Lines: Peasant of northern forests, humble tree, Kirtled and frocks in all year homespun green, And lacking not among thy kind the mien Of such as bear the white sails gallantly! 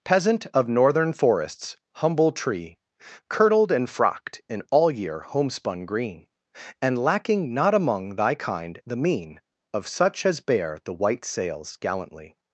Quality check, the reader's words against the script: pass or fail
fail